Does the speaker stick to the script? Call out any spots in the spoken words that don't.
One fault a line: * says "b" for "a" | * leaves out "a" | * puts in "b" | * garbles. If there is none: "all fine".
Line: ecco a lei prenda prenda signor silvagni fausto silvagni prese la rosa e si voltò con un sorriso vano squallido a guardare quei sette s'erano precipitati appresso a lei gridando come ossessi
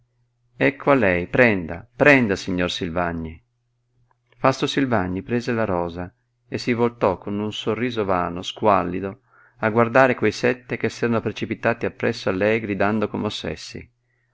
* puts in "che"